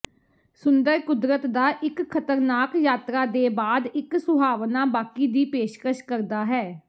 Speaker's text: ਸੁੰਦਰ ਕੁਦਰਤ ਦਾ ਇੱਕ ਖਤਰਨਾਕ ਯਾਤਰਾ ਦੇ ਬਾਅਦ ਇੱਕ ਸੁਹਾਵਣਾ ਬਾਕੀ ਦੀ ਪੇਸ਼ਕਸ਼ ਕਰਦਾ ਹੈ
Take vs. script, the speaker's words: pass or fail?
pass